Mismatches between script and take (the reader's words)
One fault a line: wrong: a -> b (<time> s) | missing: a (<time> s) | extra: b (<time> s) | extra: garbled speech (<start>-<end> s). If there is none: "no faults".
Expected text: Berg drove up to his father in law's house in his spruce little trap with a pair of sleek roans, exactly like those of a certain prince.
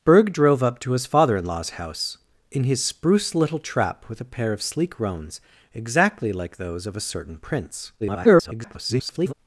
extra: garbled speech (8.0-9.3 s)